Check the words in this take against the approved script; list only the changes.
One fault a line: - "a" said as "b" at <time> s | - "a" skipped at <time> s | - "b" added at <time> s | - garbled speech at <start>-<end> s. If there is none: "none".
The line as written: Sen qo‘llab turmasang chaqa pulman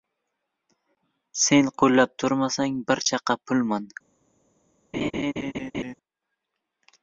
- "bir" added at 2.9 s